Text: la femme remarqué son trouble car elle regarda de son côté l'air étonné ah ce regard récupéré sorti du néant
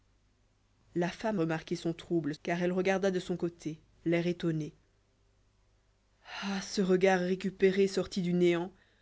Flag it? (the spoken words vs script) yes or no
no